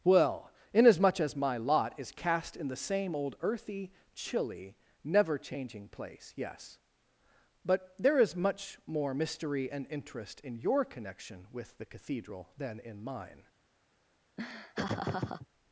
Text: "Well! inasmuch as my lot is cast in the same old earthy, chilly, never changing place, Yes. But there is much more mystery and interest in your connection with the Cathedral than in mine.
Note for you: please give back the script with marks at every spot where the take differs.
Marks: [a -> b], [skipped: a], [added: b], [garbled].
"Well! inasmuch as my lot is cast in the same old earthy, chilly, never changing place, Yes. But there is much more mystery and interest in your connection with the Cathedral than in mine.